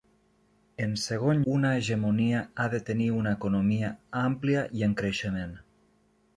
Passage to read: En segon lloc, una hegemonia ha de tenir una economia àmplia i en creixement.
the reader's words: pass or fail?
fail